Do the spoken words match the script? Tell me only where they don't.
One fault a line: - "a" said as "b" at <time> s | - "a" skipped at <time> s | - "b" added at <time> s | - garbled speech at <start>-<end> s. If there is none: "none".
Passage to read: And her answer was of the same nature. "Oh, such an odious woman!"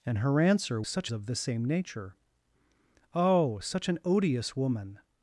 - "was" said as "such" at 0.8 s